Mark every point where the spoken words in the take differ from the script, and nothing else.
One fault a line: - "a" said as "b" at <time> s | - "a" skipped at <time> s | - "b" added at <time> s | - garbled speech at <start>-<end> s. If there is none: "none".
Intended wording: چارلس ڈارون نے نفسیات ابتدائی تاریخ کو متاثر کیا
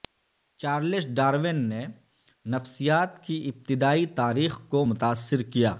- "کی" added at 3.2 s